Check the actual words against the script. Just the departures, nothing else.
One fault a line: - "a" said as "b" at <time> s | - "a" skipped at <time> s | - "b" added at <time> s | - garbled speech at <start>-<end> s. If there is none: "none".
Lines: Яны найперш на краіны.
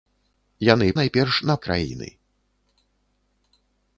none